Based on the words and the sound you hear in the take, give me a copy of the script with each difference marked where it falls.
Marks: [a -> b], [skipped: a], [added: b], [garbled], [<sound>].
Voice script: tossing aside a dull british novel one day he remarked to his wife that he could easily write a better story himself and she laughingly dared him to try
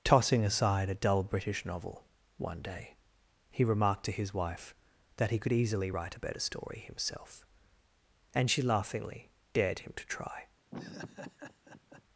tossing aside a dull british novel one day he remarked to his wife that he could easily write a better story himself and she laughingly dared him to try [laugh]